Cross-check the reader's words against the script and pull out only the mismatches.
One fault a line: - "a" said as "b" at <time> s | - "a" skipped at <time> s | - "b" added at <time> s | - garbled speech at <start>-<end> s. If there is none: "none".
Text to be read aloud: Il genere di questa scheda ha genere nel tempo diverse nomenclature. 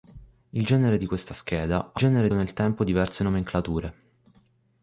none